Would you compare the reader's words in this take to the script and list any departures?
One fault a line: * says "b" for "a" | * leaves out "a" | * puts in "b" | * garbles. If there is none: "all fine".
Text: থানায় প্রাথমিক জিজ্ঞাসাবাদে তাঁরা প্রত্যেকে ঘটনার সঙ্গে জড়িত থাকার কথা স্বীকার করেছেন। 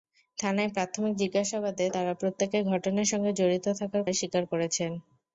* leaves out "কথা"